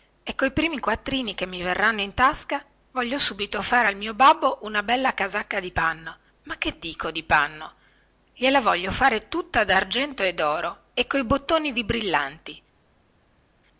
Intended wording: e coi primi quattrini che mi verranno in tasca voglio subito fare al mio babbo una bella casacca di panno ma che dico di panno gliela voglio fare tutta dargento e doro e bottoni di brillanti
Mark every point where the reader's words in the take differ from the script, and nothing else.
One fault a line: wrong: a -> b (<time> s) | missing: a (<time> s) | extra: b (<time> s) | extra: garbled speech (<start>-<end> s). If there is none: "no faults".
extra: coi (11.1 s)